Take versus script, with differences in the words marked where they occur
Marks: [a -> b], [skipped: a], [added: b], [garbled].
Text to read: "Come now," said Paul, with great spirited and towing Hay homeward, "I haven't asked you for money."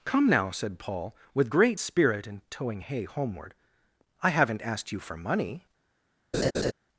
"Come now," said Paul, with great [spirited -> spirit] and towing Hay homeward, "I haven't asked you for money."